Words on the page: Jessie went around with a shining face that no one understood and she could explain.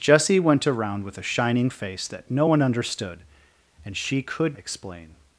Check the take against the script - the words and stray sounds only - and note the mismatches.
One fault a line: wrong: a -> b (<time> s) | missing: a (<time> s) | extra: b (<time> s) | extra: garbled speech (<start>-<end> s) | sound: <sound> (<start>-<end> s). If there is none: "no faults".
no faults